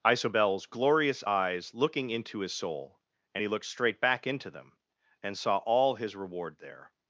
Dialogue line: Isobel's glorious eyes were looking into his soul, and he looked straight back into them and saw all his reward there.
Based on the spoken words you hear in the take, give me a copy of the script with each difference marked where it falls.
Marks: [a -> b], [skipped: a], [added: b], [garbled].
Isobel's glorious eyes [skipped: were] looking into his soul, and he looked straight back into them and saw all his reward there.